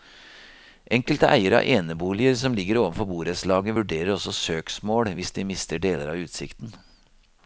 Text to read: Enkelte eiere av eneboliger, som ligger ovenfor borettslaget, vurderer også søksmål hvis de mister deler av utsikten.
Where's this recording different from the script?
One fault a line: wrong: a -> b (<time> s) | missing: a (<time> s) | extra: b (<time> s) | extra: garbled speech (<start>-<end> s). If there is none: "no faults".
no faults